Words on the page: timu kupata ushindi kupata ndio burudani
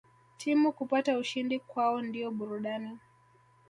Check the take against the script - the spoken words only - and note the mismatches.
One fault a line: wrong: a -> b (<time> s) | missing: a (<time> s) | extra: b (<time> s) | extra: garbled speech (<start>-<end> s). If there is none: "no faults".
wrong: kupata -> kwao (1.6 s)